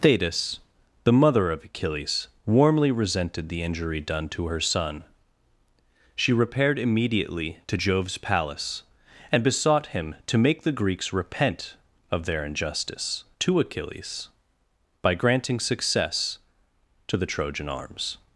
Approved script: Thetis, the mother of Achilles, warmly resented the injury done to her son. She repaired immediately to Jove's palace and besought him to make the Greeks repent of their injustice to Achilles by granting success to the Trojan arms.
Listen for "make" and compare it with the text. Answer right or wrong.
right